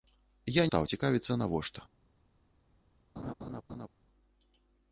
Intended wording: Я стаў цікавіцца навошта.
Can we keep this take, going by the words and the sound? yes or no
no